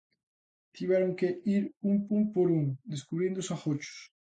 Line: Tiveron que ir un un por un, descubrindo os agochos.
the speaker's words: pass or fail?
pass